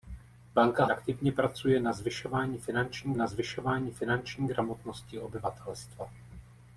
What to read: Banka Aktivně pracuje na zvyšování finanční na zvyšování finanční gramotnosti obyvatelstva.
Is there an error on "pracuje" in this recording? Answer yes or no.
no